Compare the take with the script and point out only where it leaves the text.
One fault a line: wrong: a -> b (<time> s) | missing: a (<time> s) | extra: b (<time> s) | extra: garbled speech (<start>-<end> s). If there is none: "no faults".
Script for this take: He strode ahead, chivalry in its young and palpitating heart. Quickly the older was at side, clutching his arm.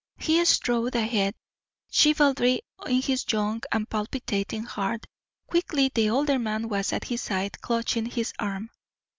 wrong: its -> his (3.0 s)
extra: man (6.4 s)
extra: his (7.0 s)